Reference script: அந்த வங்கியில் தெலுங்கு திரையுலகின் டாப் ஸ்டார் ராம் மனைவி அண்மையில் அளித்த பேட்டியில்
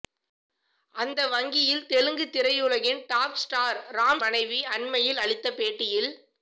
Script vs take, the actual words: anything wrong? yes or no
no